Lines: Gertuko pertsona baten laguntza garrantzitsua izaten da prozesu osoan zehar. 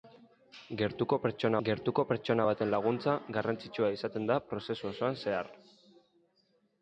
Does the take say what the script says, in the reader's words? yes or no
no